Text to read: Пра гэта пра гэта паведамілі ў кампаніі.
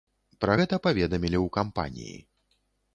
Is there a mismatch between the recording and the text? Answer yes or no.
yes